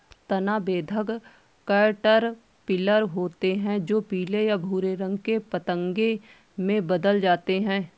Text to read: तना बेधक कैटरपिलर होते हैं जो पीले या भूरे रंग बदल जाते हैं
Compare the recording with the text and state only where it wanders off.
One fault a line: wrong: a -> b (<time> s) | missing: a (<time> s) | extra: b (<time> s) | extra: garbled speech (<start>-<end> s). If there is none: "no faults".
extra: के पतंगे में (5.2 s)